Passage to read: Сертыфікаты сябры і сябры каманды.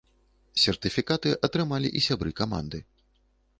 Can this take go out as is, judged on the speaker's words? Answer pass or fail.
fail